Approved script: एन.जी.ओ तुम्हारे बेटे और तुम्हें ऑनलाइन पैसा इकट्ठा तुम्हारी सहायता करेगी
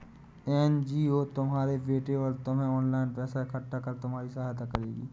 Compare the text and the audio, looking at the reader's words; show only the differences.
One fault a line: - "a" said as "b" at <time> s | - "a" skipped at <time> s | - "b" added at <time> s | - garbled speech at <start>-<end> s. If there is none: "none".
- "कर" added at 3.8 s